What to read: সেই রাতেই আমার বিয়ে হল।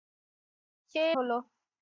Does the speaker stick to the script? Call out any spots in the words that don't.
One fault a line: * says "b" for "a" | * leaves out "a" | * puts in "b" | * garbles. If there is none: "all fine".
* leaves out "রাতেই আমার বিয়ে"